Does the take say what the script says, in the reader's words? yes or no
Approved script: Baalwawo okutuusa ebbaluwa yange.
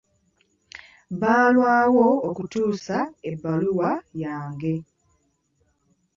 yes